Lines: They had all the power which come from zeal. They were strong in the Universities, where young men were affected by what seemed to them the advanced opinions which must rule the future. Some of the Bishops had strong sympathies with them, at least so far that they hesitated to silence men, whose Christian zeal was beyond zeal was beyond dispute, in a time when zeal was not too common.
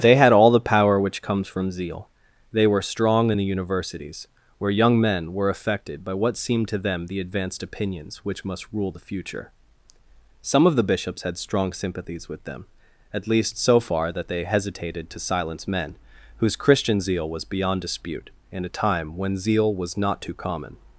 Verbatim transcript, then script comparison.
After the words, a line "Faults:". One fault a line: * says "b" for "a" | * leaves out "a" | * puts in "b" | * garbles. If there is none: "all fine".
They had all the power which comes from zeal. They were strong in the Universities, where young men were affected by what seemed to them the advanced opinions which must rule the future. Some of the Bishops had strong sympathies with them, at least so far that they hesitated to silence men, whose Christian zeal was beyond dispute, in a time when zeal was not too common.
Faults:
* says "comes" for "come"
* leaves out "zeal was beyond"